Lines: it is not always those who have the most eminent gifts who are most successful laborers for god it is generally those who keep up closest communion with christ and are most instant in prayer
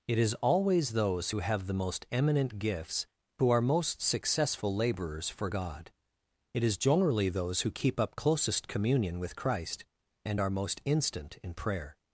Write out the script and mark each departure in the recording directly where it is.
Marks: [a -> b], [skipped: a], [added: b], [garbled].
it is [skipped: not] always those who have the most eminent gifts who are most successful laborers for god it is generally those who keep up closest communion with christ and are most instant in prayer